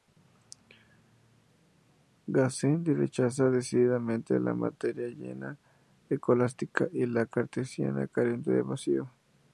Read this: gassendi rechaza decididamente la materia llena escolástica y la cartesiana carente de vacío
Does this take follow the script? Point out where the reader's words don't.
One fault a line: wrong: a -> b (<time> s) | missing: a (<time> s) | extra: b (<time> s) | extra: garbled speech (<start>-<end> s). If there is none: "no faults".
no faults